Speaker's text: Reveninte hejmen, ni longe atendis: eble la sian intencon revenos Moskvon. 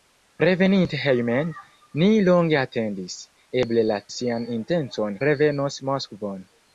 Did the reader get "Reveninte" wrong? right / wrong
right